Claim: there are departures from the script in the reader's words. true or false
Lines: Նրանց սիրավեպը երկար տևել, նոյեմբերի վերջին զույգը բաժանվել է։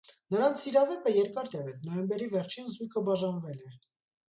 false